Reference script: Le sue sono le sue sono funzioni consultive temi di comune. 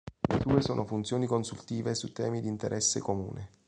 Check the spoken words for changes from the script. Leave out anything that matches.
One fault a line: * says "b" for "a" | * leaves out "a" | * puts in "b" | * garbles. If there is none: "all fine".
* leaves out "le sue sono"
* puts in "su"
* puts in "interesse"